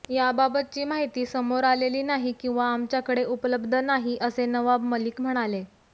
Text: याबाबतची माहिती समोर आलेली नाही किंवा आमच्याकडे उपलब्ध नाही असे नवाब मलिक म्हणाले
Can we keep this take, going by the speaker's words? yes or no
yes